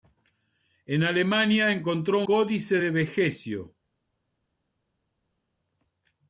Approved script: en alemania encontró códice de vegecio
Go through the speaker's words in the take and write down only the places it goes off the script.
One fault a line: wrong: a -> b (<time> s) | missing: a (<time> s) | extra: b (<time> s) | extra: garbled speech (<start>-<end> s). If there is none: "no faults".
no faults